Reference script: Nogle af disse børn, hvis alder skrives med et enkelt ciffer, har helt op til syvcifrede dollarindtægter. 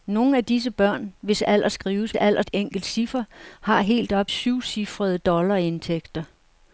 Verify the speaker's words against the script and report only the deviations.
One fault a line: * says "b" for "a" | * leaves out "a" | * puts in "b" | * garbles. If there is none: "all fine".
* says "alder" for "med"
* leaves out "til"